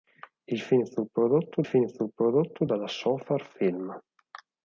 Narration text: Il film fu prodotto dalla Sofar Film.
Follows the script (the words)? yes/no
no